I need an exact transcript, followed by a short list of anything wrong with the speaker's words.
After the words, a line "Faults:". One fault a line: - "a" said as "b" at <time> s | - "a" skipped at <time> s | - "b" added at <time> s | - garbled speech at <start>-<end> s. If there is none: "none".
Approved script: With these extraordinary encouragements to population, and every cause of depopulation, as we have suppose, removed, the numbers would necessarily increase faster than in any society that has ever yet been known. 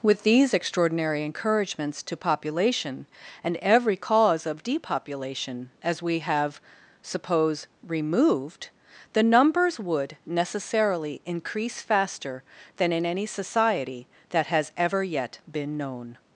With these extraordinary encouragements to population, and every cause of depopulation, as we have suppose, removed, the numbers would necessarily increase faster than in any society that has ever yet been known.
Faults:
none